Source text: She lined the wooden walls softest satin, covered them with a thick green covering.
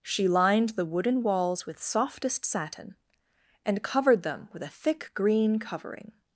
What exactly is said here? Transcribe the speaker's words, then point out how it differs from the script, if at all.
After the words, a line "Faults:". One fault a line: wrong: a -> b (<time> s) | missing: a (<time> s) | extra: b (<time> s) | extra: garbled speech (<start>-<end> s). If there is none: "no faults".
She lined the wooden walls with softest satin, and covered them with a thick green covering.
Faults:
extra: with (1.6 s)
extra: and (3.6 s)